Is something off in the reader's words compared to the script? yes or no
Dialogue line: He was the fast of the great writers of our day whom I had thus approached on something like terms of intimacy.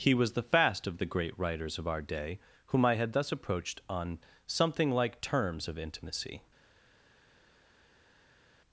no